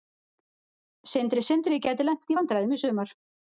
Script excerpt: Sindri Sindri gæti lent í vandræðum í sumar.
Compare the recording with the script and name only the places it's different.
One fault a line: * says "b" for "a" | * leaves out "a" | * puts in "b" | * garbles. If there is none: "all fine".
all fine